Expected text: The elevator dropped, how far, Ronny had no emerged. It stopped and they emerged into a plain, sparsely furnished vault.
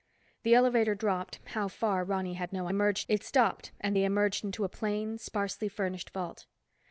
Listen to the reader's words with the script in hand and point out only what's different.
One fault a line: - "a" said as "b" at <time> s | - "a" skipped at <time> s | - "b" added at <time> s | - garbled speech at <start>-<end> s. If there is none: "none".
none